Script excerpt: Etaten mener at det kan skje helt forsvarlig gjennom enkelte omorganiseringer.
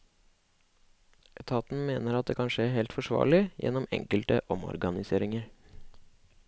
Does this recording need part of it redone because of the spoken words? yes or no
no